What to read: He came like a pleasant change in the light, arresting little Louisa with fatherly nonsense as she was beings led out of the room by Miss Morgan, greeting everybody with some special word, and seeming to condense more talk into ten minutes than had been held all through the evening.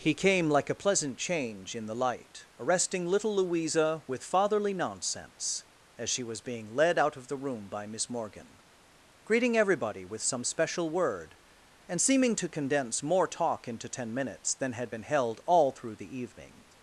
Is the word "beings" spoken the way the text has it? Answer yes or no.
no